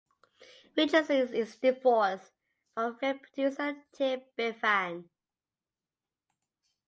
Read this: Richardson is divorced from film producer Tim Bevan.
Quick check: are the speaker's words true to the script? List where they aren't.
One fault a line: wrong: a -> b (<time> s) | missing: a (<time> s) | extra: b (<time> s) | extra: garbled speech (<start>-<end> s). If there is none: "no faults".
no faults